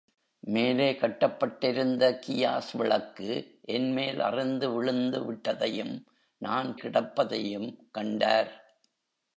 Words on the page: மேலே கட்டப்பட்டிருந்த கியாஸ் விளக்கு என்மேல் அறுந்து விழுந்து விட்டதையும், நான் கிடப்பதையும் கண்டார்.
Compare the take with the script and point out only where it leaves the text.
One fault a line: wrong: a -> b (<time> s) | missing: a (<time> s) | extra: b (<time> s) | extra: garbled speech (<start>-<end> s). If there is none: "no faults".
no faults